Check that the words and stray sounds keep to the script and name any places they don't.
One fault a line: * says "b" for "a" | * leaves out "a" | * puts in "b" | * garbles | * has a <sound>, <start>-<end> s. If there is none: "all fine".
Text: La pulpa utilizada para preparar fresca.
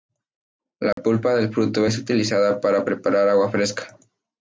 * has a dropout, 0.9-1.0 s
* puts in "del fruto es"
* puts in "agua"